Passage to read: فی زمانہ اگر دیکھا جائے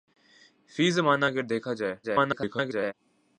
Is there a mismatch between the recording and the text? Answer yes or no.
yes